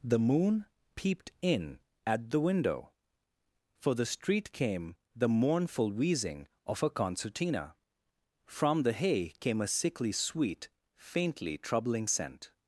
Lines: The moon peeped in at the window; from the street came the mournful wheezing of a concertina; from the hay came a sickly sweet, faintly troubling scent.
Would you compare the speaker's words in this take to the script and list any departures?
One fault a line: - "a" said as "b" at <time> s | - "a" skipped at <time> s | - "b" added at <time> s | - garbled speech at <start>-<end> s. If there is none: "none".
- "from" said as "for" at 3.8 s